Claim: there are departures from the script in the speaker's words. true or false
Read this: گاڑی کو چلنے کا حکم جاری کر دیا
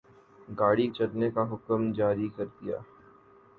true